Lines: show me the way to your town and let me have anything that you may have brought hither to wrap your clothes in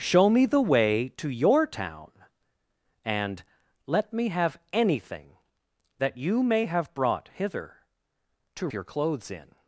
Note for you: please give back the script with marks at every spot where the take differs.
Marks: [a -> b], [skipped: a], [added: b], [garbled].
show me the way to your town and let me have anything that you may have brought hither to [skipped: wrap] your clothes in